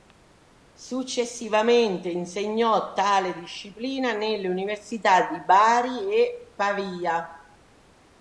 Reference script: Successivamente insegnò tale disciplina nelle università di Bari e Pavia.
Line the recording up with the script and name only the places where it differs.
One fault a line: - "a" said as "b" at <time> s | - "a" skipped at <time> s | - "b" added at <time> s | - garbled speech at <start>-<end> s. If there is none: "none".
none